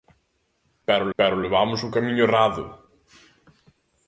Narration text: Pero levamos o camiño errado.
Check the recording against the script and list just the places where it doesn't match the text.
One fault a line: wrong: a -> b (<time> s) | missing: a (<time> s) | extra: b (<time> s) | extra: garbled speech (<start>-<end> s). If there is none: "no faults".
extra: pero (1.2 s)